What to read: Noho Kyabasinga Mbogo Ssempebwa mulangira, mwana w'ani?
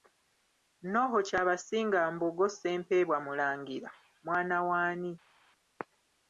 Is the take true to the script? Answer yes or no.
yes